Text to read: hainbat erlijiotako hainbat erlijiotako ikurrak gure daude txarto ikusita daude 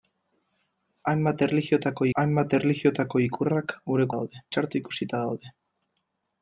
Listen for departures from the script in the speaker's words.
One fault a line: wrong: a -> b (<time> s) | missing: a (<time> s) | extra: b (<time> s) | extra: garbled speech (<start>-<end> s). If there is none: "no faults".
no faults